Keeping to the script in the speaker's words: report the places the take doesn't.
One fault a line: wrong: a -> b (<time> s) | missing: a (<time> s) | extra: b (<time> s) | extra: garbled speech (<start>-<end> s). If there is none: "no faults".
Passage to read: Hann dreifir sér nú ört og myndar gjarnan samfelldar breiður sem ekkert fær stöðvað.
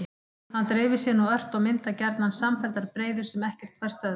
no faults